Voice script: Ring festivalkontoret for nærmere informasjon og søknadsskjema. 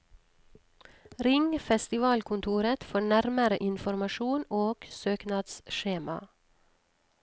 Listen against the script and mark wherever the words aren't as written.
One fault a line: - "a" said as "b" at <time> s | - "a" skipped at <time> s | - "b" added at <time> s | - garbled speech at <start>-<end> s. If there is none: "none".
none